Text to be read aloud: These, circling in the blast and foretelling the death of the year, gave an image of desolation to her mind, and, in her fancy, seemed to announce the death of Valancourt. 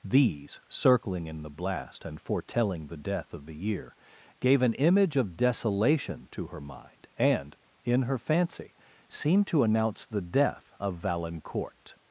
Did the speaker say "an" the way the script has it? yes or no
yes